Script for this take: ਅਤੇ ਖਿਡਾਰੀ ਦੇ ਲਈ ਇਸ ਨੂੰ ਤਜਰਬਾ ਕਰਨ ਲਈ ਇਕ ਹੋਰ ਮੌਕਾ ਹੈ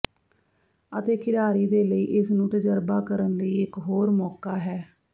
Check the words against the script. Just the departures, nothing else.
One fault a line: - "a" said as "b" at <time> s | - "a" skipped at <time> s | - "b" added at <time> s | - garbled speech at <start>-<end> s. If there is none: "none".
none